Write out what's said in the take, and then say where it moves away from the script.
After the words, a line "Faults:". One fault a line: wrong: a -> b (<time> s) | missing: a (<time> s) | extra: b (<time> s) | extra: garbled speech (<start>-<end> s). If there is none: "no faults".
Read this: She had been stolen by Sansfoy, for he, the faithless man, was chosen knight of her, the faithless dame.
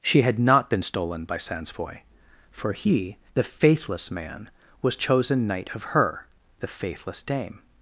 She had not been stolen by Sansfoy, for he, the faithless man, was chosen knight of her, the faithless dame.
Faults:
extra: not (0.4 s)